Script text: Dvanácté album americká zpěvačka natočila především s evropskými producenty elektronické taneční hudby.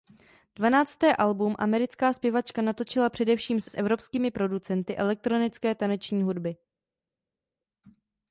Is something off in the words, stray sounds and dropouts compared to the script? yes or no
yes